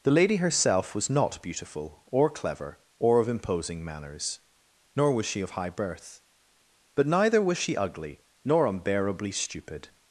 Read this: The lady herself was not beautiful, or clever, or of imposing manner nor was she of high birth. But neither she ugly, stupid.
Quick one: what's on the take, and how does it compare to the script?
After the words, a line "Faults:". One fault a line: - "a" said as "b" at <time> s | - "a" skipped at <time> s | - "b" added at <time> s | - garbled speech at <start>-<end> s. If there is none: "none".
The lady herself was not beautiful, or clever, or of imposing manners nor was she of high birth. But neither was she ugly, nor unbearably stupid.
Faults:
- "manner" said as "manners" at 3.8 s
- "was" added at 7.4 s
- "nor unbearably" added at 8.4 s